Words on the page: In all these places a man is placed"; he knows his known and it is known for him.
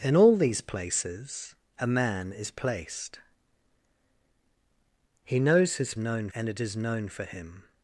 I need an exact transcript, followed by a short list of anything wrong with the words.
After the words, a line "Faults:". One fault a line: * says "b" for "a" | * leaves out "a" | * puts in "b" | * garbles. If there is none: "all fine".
In all these places a man is placed"; he knows his known and it is known for him.
Faults:
all fine